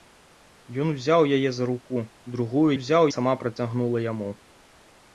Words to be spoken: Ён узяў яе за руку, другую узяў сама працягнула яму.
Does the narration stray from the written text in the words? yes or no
no